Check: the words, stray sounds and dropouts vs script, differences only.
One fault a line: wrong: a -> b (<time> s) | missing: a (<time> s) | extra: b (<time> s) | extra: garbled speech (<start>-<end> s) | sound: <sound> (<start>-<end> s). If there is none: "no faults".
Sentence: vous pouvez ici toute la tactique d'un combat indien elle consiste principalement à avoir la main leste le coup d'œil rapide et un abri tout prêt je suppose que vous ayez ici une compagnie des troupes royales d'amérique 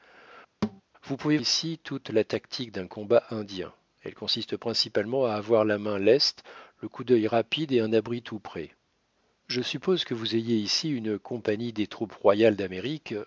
sound: thud (0.6-0.8 s)